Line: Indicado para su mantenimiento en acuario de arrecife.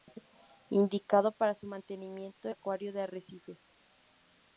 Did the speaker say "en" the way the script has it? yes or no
no